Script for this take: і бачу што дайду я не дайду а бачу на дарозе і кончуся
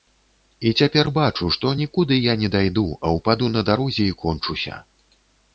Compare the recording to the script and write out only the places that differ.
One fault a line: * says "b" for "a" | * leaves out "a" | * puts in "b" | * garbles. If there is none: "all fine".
* puts in "цяпер"
* says "нікуды" for "дайду"
* says "ўпаду" for "бачу"